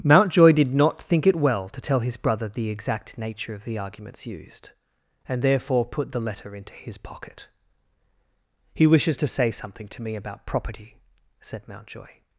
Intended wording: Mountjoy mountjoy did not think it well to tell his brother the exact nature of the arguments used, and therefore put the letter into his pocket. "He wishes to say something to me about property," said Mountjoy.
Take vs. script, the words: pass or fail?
fail